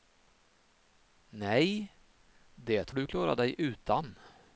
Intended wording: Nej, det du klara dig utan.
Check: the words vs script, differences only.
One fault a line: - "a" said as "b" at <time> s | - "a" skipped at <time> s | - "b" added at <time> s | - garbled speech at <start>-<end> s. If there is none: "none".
none